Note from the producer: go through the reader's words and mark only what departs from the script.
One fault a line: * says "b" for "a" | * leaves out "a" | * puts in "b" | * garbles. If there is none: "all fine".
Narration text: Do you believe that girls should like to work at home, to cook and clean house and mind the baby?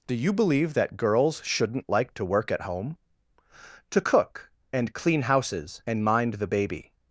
* says "shouldn't" for "should"
* says "houses" for "house"